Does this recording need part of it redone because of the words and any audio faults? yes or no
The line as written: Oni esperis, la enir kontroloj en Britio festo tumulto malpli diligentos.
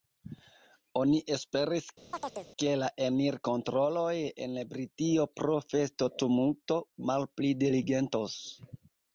yes